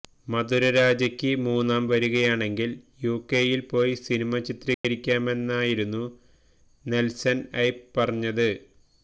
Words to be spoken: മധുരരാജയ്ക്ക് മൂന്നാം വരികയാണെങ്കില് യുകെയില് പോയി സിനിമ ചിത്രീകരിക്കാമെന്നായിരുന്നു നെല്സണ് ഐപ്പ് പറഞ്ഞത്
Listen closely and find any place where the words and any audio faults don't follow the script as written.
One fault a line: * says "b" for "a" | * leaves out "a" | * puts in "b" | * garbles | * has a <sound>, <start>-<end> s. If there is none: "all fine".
* has a dropout, 4.7-4.8 s